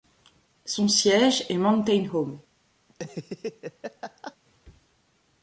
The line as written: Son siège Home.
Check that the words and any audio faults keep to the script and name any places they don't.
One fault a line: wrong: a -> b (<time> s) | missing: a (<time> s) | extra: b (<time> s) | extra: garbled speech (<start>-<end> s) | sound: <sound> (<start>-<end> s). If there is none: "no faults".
extra: est Mountain (1.5 s)
sound: laugh (2.9-4.4 s)